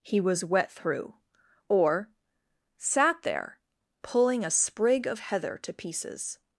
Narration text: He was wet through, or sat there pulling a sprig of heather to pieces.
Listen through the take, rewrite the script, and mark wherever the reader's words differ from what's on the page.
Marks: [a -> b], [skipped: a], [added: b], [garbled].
He was wet through, or sat there pulling a sprig of heather to pieces.